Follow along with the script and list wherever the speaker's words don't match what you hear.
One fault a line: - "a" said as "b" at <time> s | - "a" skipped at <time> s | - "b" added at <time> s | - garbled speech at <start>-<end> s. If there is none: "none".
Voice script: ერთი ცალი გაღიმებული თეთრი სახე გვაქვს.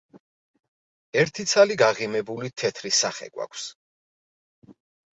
none